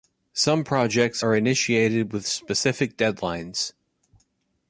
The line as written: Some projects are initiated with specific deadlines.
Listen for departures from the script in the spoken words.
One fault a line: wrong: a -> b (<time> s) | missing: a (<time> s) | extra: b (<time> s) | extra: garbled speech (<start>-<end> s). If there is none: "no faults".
no faults